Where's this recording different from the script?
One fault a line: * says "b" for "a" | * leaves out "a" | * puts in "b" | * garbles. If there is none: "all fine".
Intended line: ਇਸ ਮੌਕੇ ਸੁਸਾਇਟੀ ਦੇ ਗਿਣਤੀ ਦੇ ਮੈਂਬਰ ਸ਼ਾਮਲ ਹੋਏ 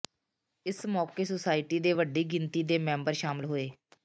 * puts in "ਵੱਡੀ"